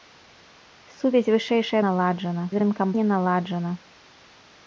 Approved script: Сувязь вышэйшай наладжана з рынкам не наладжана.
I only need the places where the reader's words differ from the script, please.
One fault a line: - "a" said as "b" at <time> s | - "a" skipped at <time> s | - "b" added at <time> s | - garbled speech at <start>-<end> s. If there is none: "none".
none